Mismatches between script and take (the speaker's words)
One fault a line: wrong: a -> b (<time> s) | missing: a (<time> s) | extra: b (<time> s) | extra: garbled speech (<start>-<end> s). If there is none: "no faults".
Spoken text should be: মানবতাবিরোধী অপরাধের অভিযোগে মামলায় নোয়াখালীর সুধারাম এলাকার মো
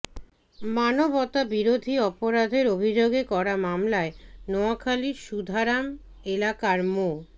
extra: করা (3.2 s)